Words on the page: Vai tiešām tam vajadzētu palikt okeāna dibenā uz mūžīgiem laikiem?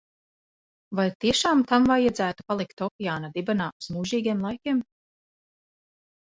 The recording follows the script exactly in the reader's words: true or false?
true